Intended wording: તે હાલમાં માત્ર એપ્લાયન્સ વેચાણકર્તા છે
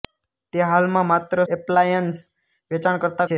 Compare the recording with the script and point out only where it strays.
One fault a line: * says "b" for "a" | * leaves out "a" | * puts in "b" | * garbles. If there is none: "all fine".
all fine